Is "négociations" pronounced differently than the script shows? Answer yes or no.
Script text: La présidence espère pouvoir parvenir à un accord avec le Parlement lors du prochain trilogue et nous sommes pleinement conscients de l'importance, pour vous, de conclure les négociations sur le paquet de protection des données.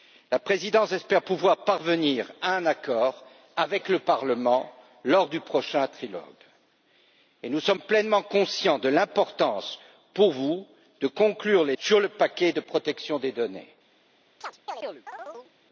yes